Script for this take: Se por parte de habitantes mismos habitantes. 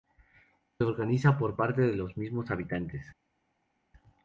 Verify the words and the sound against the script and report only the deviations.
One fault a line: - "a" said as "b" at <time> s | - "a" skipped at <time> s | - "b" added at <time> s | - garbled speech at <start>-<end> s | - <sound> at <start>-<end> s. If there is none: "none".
- "organiza" added at 0.8 s
- "habitantes" said as "los" at 2.0 s